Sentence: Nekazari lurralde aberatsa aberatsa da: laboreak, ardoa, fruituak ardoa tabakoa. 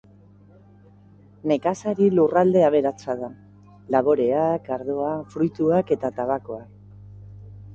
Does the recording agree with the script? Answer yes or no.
no